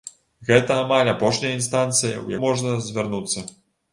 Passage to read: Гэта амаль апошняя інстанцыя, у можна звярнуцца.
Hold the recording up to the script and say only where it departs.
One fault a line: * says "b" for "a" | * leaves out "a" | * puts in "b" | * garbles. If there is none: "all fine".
all fine